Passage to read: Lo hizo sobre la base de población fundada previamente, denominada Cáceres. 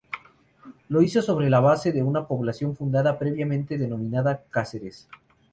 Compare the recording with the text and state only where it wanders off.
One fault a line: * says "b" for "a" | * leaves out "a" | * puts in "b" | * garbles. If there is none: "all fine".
* puts in "una"